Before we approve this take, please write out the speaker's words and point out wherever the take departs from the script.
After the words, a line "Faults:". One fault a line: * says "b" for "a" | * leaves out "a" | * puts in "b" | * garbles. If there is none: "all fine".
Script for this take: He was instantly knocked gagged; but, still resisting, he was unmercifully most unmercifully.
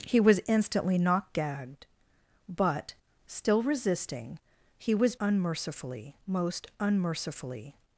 He was instantly knocked gagged; but, still resisting, he was unmercifully most unmercifully.
Faults:
all fine